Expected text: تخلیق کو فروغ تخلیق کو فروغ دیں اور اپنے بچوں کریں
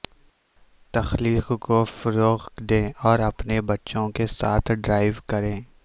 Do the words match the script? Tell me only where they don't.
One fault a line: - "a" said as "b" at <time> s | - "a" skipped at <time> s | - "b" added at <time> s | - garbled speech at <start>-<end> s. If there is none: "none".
- "تخلیق کو فروغ" skipped at 2.5 s
- "کے ساتھ ڈرائیو" added at 4.1 s